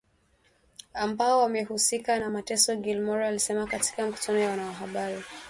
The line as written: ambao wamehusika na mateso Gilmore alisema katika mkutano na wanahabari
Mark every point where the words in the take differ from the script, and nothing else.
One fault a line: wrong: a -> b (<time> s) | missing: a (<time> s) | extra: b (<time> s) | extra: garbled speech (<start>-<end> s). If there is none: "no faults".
no faults